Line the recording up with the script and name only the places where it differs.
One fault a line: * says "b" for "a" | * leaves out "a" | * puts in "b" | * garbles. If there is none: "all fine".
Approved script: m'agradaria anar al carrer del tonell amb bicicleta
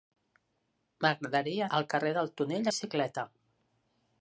* leaves out "anar"
* leaves out "amb"